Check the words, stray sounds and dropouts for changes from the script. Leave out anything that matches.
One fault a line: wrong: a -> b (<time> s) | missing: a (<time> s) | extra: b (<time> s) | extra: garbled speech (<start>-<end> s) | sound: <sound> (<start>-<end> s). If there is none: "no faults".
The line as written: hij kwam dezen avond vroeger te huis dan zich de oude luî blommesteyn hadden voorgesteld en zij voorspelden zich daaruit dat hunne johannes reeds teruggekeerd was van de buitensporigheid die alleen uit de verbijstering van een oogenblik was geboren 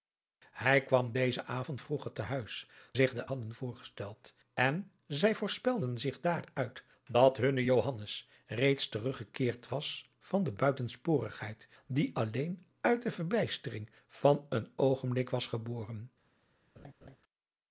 missing: dan (2.7 s)
missing: oude luî blommesteyn (3.3 s)
sound: laugh (16.8-17.2 s)